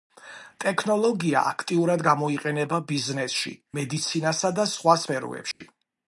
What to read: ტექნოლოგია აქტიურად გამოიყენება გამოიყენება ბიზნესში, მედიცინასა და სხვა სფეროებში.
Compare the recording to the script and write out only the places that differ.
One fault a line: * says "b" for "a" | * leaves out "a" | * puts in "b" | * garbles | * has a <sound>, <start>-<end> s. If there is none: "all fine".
* leaves out "გამოიყენება"
* has a dropout, 5.5-5.6 s